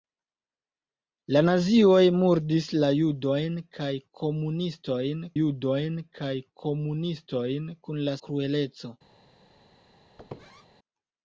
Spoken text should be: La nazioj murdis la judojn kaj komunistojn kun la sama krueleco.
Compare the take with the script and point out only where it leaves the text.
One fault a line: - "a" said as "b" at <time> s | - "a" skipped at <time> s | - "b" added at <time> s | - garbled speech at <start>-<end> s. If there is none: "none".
- "judojn kaj komunistojn" added at 5.4 s
- "sama" skipped at 8.2 s